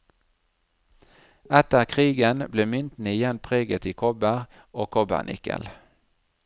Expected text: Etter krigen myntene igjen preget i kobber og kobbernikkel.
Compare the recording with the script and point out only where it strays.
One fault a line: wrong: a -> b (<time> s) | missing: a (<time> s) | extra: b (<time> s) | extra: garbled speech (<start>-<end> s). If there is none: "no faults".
extra: ble (2.5 s)